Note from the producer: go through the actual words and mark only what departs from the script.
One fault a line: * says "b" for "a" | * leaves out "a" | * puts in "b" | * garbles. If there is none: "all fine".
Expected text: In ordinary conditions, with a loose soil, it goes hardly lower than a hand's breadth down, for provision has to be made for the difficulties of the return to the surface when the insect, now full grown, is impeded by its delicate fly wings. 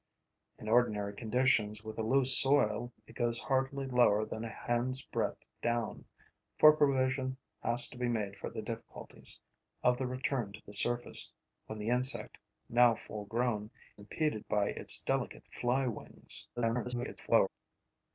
* leaves out "is"
* garbles